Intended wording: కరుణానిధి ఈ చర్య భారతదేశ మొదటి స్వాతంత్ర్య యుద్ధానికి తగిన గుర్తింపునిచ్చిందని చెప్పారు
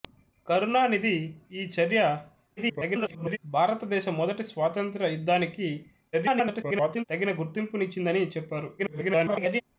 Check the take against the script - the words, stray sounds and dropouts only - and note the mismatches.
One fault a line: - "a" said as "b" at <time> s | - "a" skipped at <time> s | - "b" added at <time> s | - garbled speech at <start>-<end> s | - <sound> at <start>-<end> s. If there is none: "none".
- garbled speech at 2.6-3.4 s
- garbled speech at 6.1-7.1 s
- garbled speech at 8.8-9.6 s